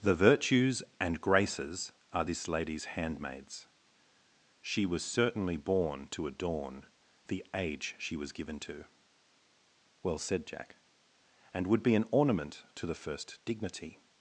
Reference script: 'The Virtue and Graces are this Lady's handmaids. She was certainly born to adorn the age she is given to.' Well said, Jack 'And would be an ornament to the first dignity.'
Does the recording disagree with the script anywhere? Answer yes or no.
yes